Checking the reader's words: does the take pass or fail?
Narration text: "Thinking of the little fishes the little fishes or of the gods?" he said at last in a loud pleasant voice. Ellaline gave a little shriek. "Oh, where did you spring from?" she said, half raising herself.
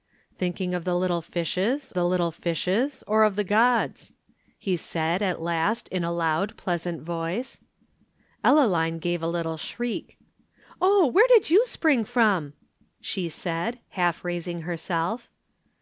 pass